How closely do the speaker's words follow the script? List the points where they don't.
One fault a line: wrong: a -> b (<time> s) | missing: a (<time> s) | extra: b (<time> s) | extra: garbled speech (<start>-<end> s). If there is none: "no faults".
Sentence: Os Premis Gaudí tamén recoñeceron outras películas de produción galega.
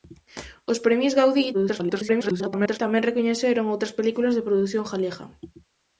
extra: garbled speech (1.5-2.8 s)